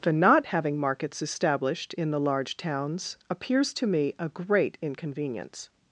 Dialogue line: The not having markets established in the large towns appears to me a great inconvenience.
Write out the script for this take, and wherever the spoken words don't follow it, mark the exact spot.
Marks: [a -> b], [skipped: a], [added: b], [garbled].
The not having markets established in the large towns appears to me a great inconvenience.